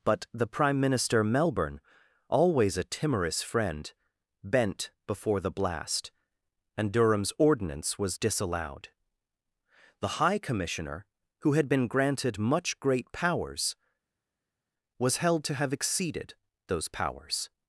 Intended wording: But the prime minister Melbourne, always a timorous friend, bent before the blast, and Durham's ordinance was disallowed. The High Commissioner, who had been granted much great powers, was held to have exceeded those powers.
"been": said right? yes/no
yes